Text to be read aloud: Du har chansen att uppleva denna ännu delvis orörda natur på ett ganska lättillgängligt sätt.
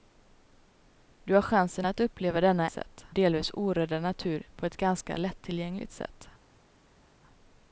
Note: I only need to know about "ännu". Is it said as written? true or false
false